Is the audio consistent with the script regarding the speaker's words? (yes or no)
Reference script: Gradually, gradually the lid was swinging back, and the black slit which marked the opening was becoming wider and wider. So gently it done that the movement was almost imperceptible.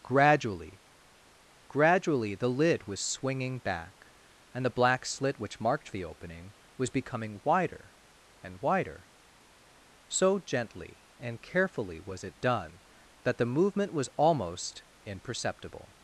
no